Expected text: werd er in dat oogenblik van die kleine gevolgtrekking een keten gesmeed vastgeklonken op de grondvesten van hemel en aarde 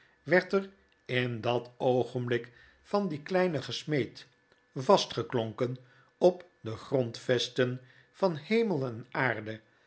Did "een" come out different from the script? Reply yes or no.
yes